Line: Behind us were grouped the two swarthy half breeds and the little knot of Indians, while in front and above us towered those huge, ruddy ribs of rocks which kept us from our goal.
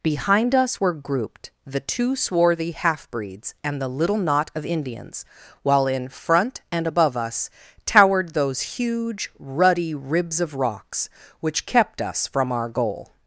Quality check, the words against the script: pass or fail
pass